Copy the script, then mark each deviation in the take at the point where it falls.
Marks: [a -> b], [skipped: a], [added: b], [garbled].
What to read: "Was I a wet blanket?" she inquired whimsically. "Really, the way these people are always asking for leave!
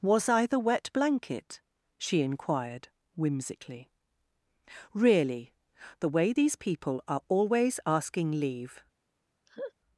"Was I [a -> the] wet blanket?" she inquired whimsically. "Really, the way these people are always asking [skipped: for] leave!